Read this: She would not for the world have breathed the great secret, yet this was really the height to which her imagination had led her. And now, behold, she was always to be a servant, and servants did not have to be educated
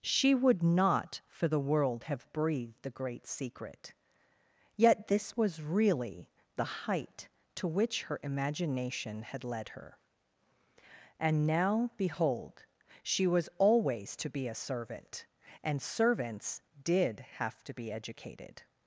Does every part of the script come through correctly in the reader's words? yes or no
no